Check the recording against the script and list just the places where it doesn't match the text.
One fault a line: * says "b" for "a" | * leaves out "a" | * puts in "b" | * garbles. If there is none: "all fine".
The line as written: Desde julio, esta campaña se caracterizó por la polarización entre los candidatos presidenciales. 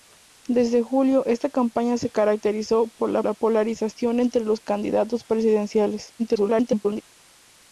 * puts in "la"
* garbles